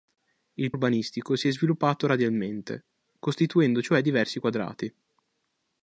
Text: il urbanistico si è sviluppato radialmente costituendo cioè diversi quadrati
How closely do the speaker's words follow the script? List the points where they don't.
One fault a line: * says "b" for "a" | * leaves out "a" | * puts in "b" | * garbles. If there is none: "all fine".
all fine